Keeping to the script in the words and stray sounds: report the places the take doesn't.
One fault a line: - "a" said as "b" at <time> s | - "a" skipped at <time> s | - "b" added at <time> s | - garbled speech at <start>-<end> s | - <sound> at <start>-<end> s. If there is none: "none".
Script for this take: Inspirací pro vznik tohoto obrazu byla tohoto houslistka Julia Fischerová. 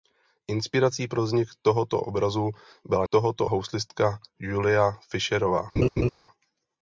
- laugh at 5.8-6.1 s